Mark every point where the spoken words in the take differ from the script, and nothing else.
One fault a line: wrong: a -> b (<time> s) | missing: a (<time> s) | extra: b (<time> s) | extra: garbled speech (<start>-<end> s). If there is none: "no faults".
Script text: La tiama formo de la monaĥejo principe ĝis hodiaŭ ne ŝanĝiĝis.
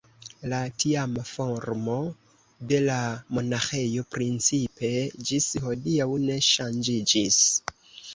no faults